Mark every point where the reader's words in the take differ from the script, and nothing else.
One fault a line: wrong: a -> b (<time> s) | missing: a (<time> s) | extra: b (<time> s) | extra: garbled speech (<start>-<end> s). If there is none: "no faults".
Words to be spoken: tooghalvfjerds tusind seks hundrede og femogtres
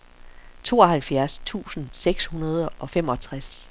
no faults